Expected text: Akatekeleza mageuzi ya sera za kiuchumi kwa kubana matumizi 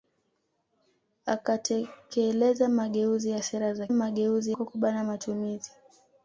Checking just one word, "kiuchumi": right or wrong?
wrong